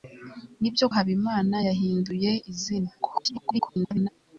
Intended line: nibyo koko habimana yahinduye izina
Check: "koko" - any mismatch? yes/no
yes